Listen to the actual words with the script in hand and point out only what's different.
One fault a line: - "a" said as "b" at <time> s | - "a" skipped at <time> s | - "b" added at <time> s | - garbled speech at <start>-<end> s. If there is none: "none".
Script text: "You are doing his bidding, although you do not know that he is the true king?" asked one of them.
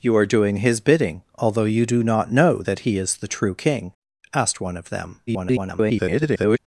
- garbled speech at 5.3-6.6 s